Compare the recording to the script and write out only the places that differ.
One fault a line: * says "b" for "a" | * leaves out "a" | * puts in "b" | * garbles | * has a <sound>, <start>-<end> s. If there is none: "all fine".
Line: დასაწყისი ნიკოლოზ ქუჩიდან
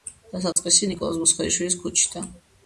* has a dropout, 0.5-0.6 s
* puts in "მუსხელიშვილის"